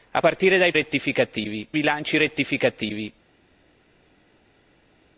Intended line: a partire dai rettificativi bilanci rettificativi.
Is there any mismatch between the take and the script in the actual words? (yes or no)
no